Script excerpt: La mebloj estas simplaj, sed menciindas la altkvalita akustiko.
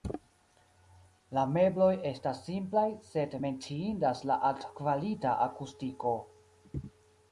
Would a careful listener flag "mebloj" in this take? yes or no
no